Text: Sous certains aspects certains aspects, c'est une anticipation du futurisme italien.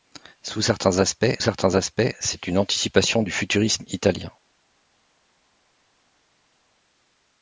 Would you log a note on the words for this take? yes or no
no